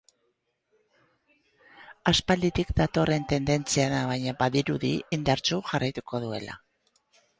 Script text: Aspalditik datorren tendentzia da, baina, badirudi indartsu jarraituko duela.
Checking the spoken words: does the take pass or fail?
pass